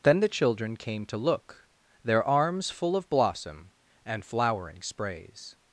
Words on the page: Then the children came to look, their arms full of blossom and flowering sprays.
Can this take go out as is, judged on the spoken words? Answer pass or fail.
pass